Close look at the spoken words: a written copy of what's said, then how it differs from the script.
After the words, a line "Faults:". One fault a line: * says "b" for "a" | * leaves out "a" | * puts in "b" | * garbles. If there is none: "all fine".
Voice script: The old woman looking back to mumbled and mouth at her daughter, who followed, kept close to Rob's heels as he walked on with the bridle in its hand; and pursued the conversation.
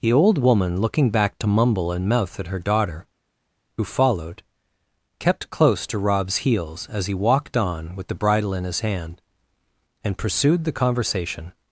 The old woman looking back to mumble and mouth at her daughter, who followed, kept close to Rob's heels as he walked on with the bridle in his hand; and pursued the conversation.
Faults:
* says "mumble" for "mumbled"
* says "his" for "its"